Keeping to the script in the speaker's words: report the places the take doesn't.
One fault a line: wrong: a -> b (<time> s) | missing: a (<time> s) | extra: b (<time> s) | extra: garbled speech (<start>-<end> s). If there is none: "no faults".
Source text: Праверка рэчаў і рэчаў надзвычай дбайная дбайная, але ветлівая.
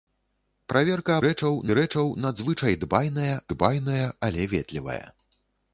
no faults